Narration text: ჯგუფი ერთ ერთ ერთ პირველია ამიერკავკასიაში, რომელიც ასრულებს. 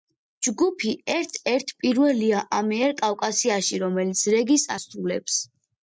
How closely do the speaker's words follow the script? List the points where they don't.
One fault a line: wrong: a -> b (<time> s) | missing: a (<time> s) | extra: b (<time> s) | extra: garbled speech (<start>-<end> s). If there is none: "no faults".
missing: ერთ (1.8 s)
extra: რეგის (4.4 s)